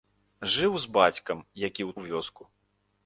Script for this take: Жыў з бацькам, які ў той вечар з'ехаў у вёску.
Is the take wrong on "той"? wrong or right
wrong